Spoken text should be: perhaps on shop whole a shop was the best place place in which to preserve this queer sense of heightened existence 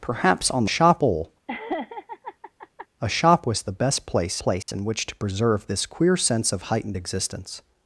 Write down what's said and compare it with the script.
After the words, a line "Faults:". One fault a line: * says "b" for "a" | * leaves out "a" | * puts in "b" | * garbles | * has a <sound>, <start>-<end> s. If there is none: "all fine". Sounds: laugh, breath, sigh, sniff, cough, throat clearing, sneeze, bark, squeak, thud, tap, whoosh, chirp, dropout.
perhaps on shop whole a shop was the best place place in which to preserve this queer sense of heightened existence
Faults:
* has a laugh, 1.5-2.9 s
* has a dropout, 4.6-4.7 s